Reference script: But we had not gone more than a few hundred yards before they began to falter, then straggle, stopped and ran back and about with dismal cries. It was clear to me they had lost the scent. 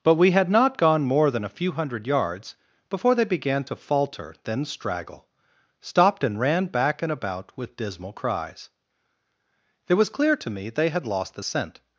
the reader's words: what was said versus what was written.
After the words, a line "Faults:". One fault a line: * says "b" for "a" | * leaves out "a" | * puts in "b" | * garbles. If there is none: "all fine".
But we had not gone more than a few hundred yards before they began to falter, then straggle, stopped and ran back and about with dismal cries. It was clear to me they had lost the scent.
Faults:
all fine